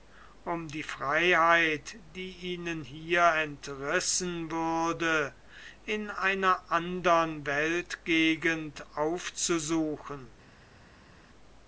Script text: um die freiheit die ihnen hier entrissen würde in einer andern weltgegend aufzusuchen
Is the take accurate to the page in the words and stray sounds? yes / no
yes